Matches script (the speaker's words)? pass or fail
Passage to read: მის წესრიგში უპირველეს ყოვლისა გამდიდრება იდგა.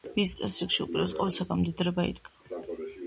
pass